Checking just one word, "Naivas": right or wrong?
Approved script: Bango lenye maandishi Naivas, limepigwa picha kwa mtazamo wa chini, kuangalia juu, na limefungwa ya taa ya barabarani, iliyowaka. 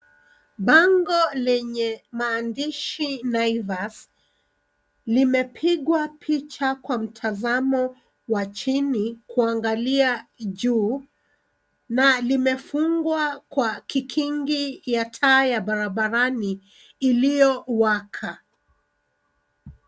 right